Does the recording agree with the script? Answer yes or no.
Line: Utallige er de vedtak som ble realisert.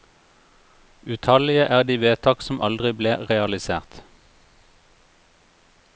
no